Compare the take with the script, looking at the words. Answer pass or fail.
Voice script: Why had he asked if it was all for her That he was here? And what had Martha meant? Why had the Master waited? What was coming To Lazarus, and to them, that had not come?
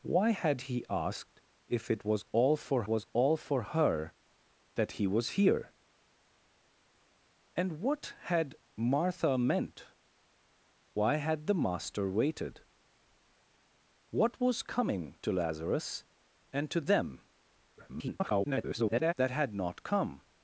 fail